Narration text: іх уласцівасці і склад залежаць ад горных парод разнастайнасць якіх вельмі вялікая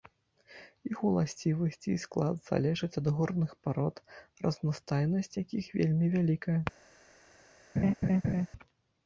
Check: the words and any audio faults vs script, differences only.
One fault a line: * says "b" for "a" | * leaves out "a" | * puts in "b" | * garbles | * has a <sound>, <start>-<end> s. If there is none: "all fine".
* has a laugh, 7.8-8.5 s